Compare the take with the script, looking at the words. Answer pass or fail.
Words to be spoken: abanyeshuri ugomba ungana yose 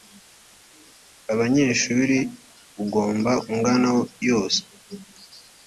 pass